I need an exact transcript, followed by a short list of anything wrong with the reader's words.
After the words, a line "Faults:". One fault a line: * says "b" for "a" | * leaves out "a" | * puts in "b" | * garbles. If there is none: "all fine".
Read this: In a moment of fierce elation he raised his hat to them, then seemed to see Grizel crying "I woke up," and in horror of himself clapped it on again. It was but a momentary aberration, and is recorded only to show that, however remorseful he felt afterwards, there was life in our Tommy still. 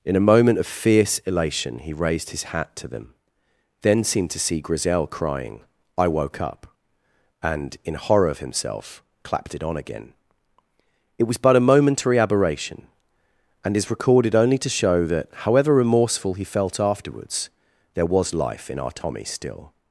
In a moment of fierce elation he raised his hat to them, then seemed to see Grizel crying "I woke up," and in horror of himself clapped it on again. It was but a momentary aberration, and is recorded only to show that, however remorseful he felt afterwards, there was life in our Tommy still.
Faults:
all fine